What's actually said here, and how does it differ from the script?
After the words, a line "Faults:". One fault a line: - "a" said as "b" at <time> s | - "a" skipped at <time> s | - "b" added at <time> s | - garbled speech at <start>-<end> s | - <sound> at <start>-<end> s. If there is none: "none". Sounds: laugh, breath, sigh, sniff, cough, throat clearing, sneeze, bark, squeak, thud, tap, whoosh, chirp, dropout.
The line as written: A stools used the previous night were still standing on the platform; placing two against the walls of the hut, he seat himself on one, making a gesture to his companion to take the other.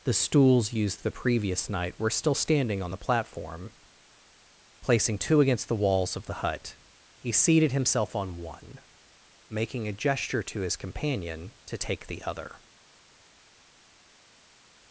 The stools used the previous night were still standing on the platform; placing two against the walls of the hut, he seated himself on one, making a gesture to his companion to take the other.
Faults:
- "A" said as "The" at 0.0 s
- "seat" said as "seated" at 7.3 s